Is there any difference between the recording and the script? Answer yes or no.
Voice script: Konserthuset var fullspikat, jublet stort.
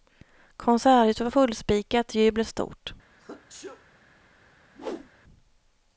no